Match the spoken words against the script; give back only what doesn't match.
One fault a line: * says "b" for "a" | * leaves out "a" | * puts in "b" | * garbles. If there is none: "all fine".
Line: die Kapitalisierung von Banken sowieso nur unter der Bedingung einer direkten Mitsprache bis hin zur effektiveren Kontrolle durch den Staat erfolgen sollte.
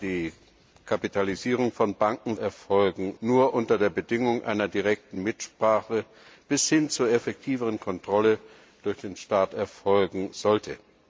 * says "erfolgen" for "sowieso"